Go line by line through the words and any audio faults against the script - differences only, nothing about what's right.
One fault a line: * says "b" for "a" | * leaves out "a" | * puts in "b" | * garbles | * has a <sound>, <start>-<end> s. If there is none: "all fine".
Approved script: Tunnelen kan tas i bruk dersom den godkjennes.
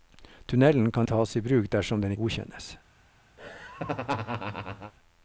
* has a laugh, 3.4-4.9 s